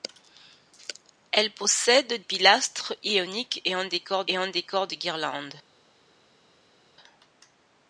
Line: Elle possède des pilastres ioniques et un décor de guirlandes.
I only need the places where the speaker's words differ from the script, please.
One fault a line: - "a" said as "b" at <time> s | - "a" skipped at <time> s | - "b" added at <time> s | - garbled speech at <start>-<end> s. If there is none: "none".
- "des" skipped at 2.2 s
- "et un décor" added at 4.3 s